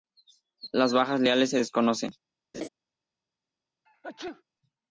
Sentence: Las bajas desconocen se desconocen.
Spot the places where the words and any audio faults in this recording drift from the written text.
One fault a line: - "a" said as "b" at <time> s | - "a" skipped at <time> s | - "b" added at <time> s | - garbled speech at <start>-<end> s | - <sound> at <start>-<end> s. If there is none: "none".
- "desconocen" said as "leales" at 1.2 s
- laugh at 2.5-2.7 s
- sneeze at 3.9-4.4 s